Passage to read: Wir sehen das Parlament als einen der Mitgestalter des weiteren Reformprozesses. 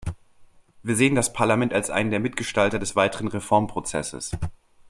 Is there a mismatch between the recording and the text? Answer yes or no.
no